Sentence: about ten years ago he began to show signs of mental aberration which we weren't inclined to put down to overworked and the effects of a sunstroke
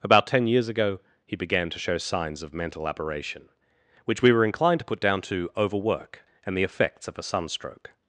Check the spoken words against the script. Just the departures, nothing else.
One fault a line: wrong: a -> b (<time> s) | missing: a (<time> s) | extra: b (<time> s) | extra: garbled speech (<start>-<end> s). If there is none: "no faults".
wrong: weren't -> were (4.3 s)
wrong: overworked -> overwork (5.6 s)